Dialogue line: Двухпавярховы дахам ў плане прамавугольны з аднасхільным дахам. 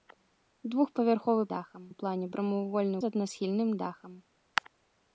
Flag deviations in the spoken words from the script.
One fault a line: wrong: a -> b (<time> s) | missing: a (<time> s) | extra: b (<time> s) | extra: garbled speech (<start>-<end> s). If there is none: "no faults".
no faults